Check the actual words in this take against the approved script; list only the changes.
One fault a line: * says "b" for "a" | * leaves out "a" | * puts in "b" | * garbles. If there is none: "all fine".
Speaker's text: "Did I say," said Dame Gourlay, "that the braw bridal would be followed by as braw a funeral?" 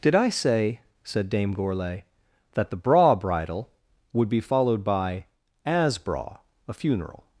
all fine